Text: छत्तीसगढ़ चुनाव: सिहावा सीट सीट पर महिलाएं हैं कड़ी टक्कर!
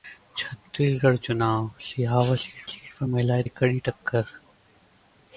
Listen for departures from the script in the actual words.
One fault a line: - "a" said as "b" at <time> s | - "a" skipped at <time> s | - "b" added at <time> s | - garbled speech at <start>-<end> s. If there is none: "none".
none